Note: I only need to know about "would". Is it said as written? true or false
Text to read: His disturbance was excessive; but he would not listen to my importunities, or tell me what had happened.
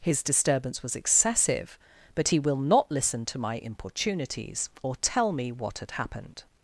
false